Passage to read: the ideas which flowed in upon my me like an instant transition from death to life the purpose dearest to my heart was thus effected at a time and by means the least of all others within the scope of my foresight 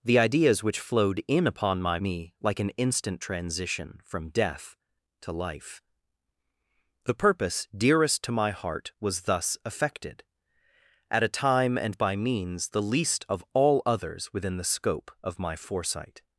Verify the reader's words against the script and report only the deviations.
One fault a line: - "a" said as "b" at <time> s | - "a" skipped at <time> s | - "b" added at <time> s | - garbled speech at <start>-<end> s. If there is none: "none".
none